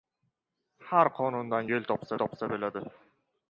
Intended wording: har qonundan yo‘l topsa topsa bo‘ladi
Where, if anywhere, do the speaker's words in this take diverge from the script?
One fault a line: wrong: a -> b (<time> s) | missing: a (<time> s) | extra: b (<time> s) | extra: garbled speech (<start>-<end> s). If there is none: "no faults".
no faults